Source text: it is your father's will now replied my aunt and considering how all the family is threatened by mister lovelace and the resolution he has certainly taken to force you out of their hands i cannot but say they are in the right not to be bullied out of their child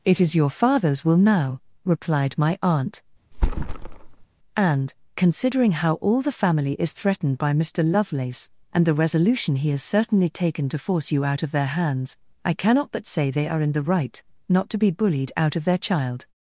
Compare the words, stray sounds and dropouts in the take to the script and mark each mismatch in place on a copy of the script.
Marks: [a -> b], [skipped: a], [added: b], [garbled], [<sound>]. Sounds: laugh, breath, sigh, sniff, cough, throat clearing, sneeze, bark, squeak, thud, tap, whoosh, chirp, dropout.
it is your father's will now replied my aunt [thud] and considering how all the family is threatened by mister lovelace and the resolution he has certainly taken to force you out of their hands i cannot but say they are in the right not to be bullied out of their child